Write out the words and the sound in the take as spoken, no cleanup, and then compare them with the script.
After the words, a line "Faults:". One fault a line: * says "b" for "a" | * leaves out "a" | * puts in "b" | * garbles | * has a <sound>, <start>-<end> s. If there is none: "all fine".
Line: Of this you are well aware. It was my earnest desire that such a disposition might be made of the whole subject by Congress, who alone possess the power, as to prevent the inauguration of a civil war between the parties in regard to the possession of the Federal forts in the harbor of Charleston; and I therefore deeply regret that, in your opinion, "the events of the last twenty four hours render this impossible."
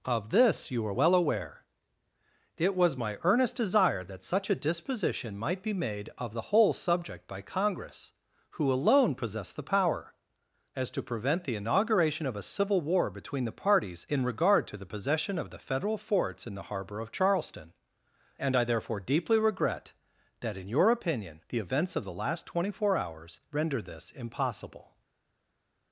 Of this you are well aware. It was my earnest desire that such a disposition might be made of the whole subject by Congress, who alone possess the power, as to prevent the inauguration of a civil war between the parties in regard to the possession of the Federal forts in the harbor of Charleston; and I therefore deeply regret that, in your opinion, "the events of the last twenty four hours render this impossible."
Faults:
all fine